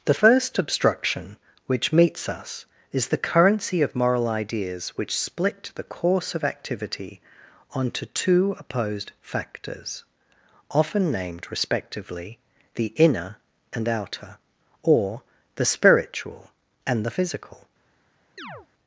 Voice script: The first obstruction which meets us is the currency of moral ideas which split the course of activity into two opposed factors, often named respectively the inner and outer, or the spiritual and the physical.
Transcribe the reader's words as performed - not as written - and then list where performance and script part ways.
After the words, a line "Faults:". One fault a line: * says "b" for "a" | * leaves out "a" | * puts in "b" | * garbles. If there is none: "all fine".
The first obstruction which meets us is the currency of moral ideas which split the course of activity onto two opposed factors, often named respectively the inner and outer, or the spiritual and the physical.
Faults:
* says "onto" for "into"